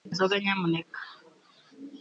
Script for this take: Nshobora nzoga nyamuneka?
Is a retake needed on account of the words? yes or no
no